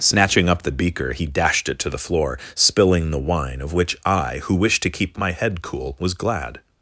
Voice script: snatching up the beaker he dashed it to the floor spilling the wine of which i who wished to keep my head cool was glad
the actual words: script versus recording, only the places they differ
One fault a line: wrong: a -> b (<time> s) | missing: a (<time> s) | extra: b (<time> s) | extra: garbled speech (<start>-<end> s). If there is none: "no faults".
no faults